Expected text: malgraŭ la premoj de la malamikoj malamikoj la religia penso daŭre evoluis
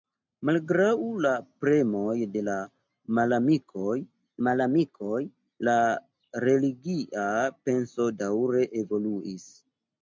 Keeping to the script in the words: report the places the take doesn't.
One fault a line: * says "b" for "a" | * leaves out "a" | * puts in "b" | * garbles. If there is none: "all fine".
all fine